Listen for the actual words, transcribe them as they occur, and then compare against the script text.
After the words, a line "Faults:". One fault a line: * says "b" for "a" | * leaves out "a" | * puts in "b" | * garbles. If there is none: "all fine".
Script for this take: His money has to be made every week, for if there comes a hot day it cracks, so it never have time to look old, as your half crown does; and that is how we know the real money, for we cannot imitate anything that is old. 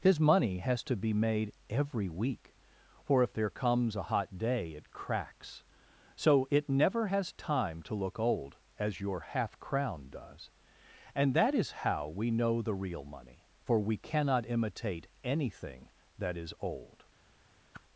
His money has to be made every week, for if there comes a hot day it cracks, so it never has time to look old, as your half crown does; and that is how we know the real money, for we cannot imitate anything that is old.
Faults:
* says "has" for "have"